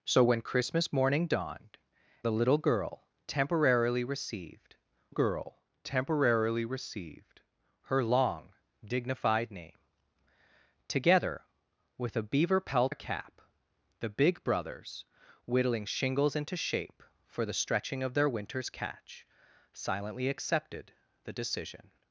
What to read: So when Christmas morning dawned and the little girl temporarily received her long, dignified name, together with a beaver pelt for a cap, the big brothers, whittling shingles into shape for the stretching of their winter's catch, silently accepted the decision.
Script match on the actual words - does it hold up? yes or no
no